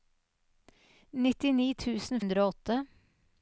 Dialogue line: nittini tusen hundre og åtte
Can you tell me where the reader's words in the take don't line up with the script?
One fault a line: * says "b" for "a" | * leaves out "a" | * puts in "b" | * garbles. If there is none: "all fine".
all fine